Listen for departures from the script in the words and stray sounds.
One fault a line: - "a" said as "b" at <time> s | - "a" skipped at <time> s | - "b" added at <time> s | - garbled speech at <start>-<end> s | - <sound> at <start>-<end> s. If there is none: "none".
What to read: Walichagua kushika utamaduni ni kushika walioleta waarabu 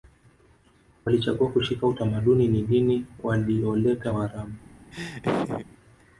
- "kushika" said as "dini" at 2.6 s
- laugh at 4.9-5.7 s